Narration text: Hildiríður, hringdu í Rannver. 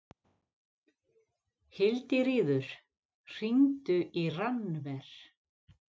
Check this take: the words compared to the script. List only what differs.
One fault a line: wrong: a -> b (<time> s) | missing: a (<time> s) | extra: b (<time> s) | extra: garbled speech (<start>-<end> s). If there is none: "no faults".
no faults